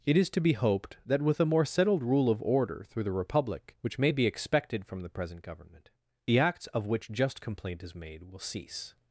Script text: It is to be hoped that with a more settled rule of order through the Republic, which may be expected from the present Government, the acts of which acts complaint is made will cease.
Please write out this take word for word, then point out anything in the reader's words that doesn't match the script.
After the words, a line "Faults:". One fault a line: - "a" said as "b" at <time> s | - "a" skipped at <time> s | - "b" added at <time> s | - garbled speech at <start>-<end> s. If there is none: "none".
It is to be hoped that with a more settled rule of order through the Republic, which may be expected from the present Government, the acts of which just complaint is made will cease.
Faults:
- "acts" said as "just" at 7.1 s